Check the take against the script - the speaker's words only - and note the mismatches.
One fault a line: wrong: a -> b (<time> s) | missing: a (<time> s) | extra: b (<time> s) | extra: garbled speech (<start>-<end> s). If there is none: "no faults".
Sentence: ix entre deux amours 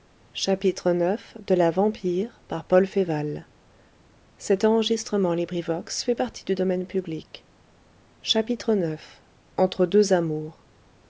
no faults